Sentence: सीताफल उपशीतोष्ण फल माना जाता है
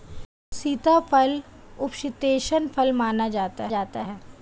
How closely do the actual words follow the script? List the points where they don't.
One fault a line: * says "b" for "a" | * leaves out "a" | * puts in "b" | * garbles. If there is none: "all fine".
* puts in "जाता"